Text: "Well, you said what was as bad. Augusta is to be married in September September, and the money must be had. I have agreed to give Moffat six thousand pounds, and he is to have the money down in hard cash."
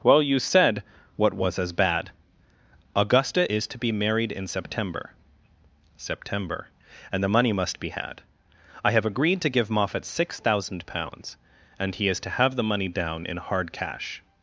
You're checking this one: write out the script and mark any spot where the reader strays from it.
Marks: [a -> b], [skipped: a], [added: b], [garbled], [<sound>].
"Well, you said what was as bad. Augusta is to be married in September September, and the money must be had. I have agreed to give Moffat six thousand pounds, and he is to have the money down in hard cash."